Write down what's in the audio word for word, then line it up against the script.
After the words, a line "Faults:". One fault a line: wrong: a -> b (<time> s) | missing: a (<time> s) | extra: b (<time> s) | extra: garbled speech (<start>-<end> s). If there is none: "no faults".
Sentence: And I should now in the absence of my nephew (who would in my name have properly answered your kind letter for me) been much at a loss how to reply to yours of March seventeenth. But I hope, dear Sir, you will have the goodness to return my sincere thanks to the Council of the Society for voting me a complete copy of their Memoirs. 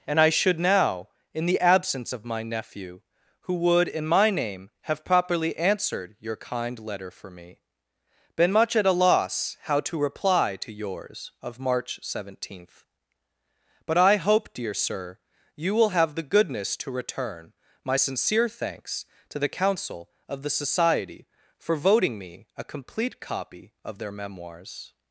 And I should now in the absence of my nephew (who would in my name have properly answered your kind letter for me) been much at a loss how to reply to yours of March seventeenth. But I hope, dear Sir, you will have the goodness to return my sincere thanks to the Council of the Society for voting me a complete copy of their Memoirs.
Faults:
no faults